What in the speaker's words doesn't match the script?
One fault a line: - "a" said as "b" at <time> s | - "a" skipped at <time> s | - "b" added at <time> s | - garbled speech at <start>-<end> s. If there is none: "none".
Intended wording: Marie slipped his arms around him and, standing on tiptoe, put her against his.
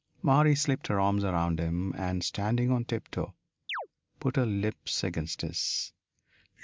- "his" said as "her" at 0.9 s
- "lips" added at 4.4 s